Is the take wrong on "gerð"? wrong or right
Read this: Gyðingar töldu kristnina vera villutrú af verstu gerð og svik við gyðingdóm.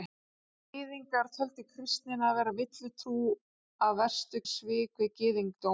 wrong